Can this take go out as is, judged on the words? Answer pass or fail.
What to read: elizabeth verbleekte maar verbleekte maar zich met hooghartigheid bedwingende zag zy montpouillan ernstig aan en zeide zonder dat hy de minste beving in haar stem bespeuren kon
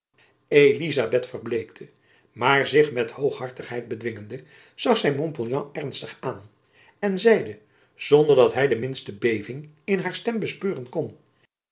fail